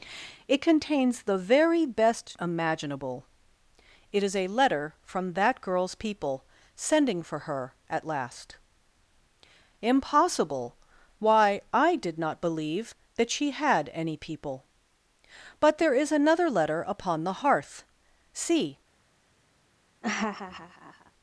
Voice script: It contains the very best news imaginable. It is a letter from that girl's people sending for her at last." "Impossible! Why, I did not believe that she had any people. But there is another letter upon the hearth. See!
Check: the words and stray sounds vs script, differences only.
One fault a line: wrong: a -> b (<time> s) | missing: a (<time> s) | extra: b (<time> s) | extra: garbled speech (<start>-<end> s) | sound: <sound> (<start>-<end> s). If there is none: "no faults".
missing: news (2.4 s)
sound: laugh (20.0-21.1 s)